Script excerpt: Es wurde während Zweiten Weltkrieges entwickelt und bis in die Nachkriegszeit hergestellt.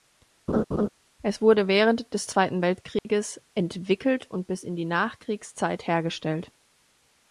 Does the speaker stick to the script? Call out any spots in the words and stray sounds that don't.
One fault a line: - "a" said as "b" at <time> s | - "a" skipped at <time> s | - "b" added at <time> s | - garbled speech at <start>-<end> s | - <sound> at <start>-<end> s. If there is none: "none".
- laugh at 0.5-0.9 s
- "des" added at 2.1 s
- dropout at 3.0-3.0 s